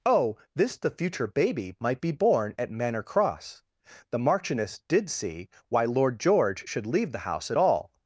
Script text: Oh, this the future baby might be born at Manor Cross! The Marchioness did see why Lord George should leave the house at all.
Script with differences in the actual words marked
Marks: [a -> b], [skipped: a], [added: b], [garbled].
Oh, this the future baby might be born at Manor Cross! The Marchioness did see why Lord George should leave the house at all.